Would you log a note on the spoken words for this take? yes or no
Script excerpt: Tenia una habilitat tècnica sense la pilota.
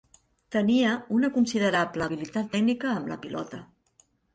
yes